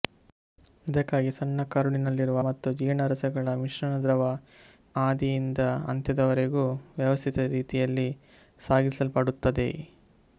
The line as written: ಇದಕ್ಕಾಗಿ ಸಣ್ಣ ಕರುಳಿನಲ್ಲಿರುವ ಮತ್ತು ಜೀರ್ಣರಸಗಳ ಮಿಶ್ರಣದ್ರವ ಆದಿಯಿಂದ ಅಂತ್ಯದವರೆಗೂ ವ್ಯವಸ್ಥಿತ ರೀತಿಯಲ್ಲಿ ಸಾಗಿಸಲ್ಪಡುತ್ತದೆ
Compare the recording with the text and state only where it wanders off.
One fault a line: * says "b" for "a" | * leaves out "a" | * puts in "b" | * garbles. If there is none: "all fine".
all fine